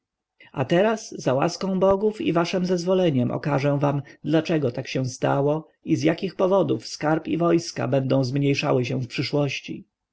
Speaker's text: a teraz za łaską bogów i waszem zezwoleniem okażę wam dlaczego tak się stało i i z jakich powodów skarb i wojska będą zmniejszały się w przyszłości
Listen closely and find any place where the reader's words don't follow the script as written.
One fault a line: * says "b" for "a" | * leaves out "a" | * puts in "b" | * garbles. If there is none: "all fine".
* leaves out "i"